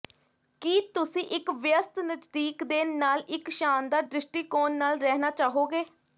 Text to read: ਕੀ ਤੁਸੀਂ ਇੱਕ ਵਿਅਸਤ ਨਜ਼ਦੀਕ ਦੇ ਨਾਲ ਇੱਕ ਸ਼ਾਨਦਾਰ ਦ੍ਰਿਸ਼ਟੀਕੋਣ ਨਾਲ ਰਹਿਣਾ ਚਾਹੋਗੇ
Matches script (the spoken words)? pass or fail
pass